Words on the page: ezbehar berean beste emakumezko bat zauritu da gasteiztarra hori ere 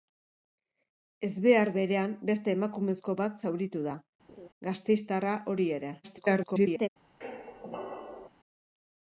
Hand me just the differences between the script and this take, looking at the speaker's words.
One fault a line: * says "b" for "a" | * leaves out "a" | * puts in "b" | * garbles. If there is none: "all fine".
* garbles